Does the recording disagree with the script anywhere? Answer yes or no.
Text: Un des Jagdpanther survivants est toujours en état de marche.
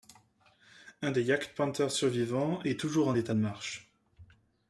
no